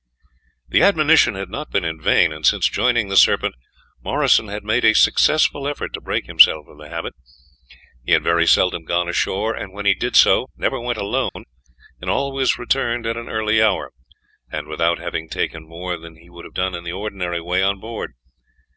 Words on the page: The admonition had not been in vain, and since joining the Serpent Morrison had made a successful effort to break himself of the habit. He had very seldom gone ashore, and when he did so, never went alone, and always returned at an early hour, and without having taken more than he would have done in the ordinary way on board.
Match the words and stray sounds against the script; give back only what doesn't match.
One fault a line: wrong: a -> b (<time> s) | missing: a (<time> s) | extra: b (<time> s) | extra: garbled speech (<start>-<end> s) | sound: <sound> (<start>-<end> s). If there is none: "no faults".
sound: dropout (11.3-11.4 s)